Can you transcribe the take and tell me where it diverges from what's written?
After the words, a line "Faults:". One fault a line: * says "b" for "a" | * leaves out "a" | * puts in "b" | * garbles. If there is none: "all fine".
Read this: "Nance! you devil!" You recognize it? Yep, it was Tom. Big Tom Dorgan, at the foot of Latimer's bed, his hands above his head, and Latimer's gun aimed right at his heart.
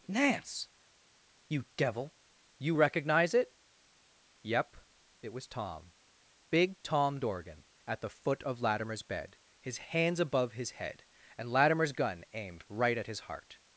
"Nance! you devil!" You recognize it? Yep, it was Tom. Big Tom Dorgan, at the foot of Latimer's bed, his hands above his head, and Latimer's gun aimed right at his heart.
Faults:
all fine